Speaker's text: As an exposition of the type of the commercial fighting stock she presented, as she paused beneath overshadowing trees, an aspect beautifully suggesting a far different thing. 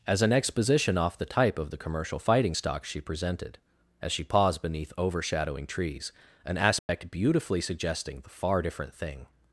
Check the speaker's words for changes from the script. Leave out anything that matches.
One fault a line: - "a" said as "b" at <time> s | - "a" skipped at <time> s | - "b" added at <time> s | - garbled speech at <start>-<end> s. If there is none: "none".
- "of" said as "off" at 1.0 s
- "a" said as "the" at 8.2 s